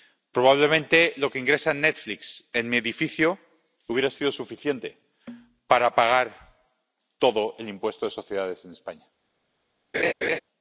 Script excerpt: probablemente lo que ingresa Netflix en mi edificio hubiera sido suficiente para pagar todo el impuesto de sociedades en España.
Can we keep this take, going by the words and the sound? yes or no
no